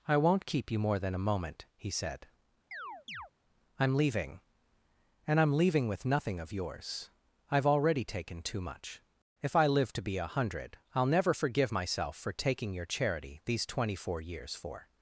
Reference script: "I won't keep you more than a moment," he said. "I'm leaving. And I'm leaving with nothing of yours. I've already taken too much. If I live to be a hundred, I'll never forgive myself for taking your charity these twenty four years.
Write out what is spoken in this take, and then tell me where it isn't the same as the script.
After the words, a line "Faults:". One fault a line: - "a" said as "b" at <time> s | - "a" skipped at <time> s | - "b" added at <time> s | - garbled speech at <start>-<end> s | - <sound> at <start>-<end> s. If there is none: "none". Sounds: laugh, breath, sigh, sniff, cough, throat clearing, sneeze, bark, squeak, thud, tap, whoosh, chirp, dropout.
"I won't keep you more than a moment," he said. "I'm leaving. And I'm leaving with nothing of yours. I've already taken too much. If I live to be a hundred, I'll never forgive myself for taking your charity these twenty four years. For
Faults:
- chirp at 2.7-3.3 s
- "For" added at 14.5 s